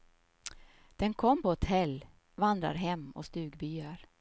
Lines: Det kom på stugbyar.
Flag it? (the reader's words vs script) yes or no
yes